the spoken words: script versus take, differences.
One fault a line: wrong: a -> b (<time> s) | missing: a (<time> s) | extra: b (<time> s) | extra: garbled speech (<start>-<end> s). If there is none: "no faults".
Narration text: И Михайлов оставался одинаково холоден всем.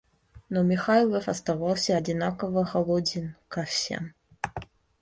wrong: И -> Но (0.5 s)
extra: ко (3.5 s)